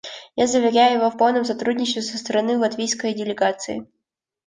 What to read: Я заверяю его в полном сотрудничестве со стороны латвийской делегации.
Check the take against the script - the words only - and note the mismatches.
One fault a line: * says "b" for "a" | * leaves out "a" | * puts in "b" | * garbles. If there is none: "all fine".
all fine